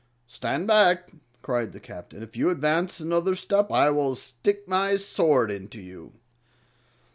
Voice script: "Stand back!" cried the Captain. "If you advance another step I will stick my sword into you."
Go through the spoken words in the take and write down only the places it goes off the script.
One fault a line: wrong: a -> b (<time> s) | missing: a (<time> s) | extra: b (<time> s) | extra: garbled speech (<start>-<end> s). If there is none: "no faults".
no faults